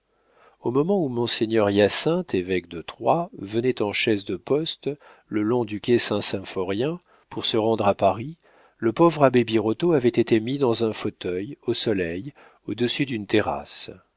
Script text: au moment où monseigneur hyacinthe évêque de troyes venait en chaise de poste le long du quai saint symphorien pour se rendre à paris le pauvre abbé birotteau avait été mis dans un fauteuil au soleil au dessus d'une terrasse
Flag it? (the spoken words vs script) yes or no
no